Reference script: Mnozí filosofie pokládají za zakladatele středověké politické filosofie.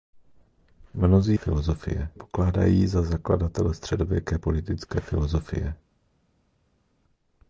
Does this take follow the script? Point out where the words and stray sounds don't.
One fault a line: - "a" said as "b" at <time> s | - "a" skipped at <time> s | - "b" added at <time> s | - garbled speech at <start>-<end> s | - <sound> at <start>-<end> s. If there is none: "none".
none